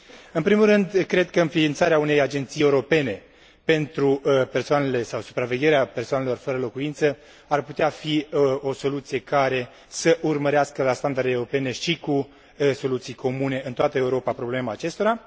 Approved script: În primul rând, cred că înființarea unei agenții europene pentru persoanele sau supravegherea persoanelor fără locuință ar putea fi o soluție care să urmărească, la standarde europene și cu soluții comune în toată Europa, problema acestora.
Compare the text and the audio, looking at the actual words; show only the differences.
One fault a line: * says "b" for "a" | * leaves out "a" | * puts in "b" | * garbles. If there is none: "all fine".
all fine